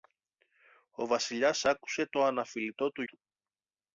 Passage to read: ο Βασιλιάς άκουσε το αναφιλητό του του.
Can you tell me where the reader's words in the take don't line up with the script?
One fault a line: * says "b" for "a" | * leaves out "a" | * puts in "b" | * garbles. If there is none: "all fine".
all fine